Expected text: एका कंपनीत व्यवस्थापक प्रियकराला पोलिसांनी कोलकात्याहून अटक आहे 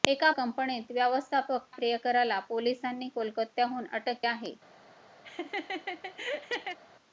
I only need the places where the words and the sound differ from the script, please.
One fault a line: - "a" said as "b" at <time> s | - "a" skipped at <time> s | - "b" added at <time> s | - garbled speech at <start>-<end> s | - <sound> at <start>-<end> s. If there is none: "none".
- laugh at 5.2-6.8 s